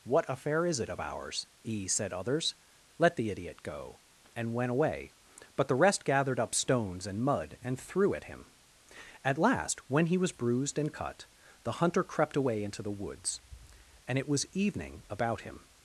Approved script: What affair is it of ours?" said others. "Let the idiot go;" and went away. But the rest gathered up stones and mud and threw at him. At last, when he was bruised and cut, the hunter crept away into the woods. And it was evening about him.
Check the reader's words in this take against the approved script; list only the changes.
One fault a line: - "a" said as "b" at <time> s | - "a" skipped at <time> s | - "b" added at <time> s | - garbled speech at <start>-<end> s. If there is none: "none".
- "e" added at 1.6 s